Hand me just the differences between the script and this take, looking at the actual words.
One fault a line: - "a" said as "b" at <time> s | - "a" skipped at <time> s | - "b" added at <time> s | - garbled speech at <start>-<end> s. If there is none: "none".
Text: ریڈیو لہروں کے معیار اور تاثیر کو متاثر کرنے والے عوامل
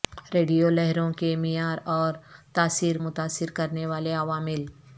- "کو" skipped at 3.0 s